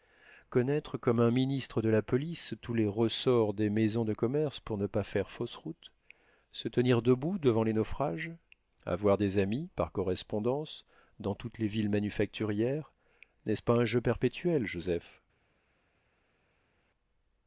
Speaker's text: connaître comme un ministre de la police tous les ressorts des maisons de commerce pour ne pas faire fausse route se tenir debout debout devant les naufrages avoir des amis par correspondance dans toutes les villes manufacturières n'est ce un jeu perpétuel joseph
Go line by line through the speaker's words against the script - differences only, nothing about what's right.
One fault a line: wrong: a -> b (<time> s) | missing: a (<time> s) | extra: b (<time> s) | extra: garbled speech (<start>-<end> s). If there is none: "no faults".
missing: debout (7.4 s)
extra: pas (13.6 s)